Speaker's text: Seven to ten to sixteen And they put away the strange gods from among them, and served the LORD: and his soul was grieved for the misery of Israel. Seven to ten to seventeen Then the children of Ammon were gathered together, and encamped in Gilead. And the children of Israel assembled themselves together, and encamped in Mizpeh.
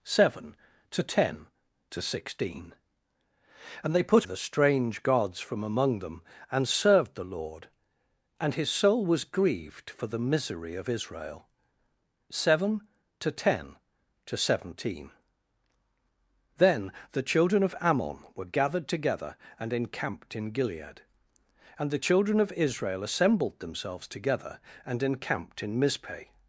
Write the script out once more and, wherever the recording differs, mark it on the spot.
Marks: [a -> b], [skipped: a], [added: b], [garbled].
Seven to ten to sixteen And they put [skipped: away] the strange gods from among them, and served the LORD: and his soul was grieved for the misery of Israel. Seven to ten to seventeen Then the children of Ammon were gathered together, and encamped in Gilead. And the children of Israel assembled themselves together, and encamped in Mizpeh.